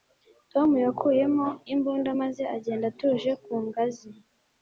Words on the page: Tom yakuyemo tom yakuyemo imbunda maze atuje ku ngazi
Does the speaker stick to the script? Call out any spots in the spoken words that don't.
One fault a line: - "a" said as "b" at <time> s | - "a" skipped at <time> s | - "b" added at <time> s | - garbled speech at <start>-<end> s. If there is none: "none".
- "tom yakuyemo" skipped at 1.5 s
- "agenda" added at 2.6 s